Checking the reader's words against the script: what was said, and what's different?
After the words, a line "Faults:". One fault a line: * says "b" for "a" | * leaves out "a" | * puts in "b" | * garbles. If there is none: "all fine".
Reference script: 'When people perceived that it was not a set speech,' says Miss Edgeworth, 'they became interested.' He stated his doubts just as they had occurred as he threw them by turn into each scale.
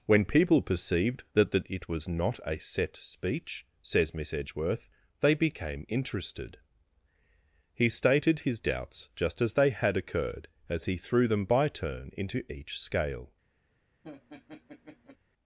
'When people perceived that that it was not a set speech,' says Miss Edgeworth, 'they became interested.' He stated his doubts just as they had occurred as he threw them by turn into each scale.
Faults:
* puts in "that"